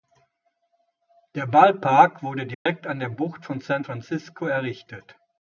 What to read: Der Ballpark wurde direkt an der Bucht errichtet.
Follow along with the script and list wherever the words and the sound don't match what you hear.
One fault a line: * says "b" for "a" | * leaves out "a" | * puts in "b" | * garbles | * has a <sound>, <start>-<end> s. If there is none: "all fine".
* has a dropout, 2.5-2.7 s
* puts in "von San Francisco"